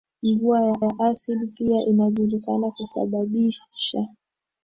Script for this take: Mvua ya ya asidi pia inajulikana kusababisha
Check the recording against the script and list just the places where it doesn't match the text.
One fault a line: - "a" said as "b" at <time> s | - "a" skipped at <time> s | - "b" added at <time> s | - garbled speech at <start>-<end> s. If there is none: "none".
none